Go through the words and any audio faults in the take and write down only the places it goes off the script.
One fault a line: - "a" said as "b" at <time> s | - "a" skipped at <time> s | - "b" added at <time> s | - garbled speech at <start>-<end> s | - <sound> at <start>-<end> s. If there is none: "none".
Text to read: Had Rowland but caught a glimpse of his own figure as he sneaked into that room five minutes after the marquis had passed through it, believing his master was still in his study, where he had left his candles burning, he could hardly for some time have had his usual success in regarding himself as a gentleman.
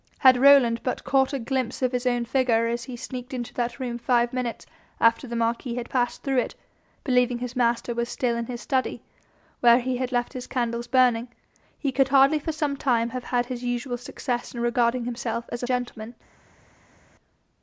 none